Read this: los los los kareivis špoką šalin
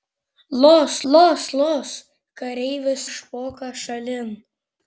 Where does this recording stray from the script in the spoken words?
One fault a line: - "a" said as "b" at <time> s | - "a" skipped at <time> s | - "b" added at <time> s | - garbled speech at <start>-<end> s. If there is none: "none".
none